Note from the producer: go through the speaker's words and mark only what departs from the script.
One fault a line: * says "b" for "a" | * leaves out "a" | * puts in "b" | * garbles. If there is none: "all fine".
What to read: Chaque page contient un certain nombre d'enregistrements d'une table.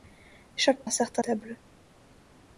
* leaves out "page contient"
* leaves out "nombre d'enregistrements d'une"